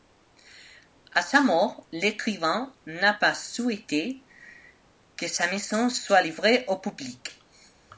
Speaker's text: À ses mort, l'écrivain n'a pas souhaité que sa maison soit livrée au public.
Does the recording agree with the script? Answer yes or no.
no